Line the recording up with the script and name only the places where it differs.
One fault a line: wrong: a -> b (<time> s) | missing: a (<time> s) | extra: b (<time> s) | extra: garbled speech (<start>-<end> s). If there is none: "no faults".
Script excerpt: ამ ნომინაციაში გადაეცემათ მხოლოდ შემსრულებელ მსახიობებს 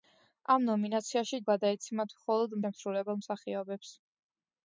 no faults